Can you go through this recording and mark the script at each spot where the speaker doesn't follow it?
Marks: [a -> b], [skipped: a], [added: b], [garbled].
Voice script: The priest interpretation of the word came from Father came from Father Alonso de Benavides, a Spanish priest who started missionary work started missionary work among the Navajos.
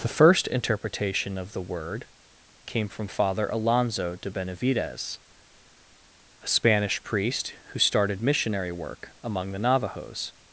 The [priest -> first] interpretation of the word came from Father [skipped: came from Father] Alonso de Benavides, a Spanish priest who started missionary work [skipped: started missionary work] among the Navajos.